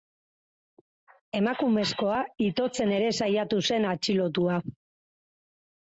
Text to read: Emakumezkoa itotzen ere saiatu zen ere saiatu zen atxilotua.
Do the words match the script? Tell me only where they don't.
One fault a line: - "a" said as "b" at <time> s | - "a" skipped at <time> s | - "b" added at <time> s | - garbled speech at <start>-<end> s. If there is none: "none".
- "ere saiatu zen" skipped at 3.9 s